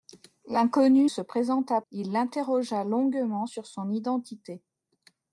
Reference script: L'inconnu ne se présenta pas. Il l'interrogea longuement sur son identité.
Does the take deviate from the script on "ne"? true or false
true